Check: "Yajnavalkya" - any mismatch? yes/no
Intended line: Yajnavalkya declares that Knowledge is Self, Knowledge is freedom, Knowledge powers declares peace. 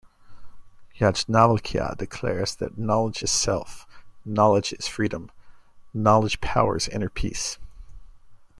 no